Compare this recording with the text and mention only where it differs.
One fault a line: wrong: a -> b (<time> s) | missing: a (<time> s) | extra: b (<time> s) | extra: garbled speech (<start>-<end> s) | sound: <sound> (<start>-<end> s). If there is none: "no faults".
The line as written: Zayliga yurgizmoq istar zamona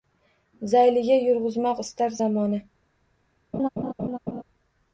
sound: laugh (3.5-4.4 s)